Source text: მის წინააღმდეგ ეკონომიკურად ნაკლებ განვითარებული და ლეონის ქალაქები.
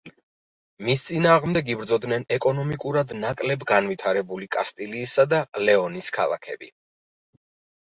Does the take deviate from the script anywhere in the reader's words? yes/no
yes